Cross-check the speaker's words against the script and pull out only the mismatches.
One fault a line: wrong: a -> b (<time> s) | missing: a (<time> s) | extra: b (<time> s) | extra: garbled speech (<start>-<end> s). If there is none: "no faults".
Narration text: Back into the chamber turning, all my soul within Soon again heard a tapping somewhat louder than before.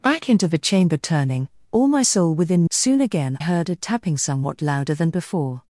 no faults